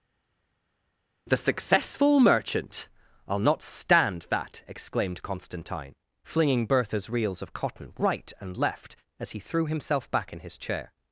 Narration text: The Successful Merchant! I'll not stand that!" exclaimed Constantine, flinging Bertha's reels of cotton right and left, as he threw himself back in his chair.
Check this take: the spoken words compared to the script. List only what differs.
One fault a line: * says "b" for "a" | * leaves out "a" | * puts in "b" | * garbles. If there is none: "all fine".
all fine